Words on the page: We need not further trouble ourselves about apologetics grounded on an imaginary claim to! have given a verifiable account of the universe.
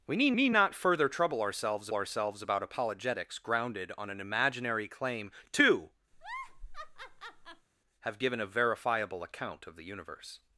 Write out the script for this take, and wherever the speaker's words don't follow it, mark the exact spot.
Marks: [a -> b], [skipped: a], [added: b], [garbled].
We need [added: need] not further trouble ourselves [added: ourselves] about apologetics grounded on an imaginary claim to! have given a verifiable account of the universe.